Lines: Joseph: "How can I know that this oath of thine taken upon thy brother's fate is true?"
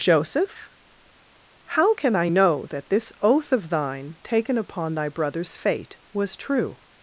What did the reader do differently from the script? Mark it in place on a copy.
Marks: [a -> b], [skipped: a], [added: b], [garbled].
Joseph: "How can I know that this oath of thine taken upon thy brother's fate [is -> was] true?"